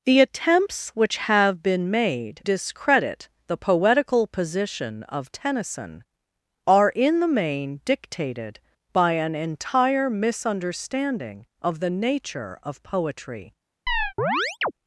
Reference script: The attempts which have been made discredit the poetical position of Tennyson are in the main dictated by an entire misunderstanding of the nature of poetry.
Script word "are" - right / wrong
right